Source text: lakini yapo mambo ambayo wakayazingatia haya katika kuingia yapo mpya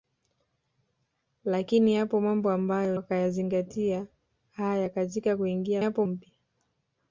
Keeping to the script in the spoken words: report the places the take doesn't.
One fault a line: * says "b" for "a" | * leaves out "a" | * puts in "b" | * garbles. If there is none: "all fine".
all fine